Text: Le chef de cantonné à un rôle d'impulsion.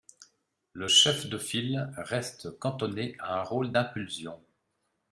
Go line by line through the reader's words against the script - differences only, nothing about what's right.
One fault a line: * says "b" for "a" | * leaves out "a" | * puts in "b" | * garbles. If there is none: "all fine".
* puts in "file reste"